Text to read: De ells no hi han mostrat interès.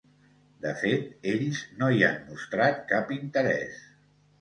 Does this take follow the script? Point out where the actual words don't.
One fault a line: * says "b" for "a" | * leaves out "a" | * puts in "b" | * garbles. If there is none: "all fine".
* puts in "fet"
* puts in "cap"